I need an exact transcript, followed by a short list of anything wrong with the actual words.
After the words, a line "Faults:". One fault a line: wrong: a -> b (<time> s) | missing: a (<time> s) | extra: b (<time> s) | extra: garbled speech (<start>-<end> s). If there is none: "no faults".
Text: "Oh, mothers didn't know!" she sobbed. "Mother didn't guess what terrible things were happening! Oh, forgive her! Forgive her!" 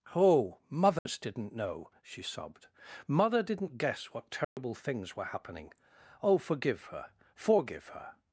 "Oh, mothers didn't know!" she sobbed. "Mother didn't guess what terrible things were happening! Oh, forgive her! Forgive her!"
Faults:
no faults